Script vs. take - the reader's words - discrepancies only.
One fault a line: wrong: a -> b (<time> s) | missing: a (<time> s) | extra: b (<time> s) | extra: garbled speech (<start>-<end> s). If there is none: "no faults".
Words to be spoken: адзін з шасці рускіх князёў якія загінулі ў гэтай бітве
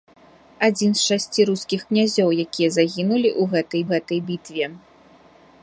extra: гэтай (3.9 s)